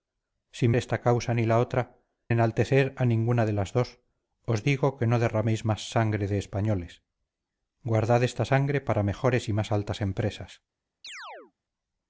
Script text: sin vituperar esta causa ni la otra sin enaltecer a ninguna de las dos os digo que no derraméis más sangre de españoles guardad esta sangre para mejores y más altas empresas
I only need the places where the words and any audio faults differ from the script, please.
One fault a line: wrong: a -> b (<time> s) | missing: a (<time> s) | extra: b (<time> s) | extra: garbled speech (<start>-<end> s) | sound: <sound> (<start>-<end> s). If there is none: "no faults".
missing: vituperar (0.7 s)
missing: sin (2.0 s)
sound: chirp (11.0-11.5 s)